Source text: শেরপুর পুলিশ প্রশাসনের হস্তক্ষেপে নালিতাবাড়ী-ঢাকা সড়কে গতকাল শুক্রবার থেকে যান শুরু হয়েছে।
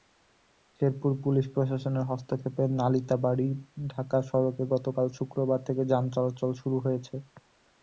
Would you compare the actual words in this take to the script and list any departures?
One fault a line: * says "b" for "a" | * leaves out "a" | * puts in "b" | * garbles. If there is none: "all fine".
* puts in "চলাচল"